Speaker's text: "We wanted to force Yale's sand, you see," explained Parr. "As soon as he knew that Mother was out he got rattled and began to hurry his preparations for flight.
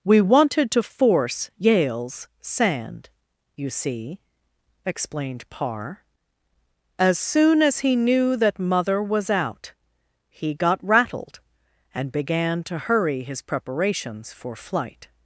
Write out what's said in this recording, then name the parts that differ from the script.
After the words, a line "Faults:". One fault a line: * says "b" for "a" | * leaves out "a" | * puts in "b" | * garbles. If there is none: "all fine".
"We wanted to force Yale's sand, you see," explained Parr. "As soon as he knew that Mother was out he got rattled and began to hurry his preparations for flight.
Faults:
all fine